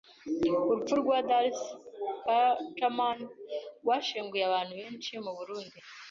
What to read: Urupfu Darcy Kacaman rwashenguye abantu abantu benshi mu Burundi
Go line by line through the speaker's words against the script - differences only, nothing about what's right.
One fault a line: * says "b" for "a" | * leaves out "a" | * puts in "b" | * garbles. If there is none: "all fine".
* puts in "rwa"
* leaves out "abantu"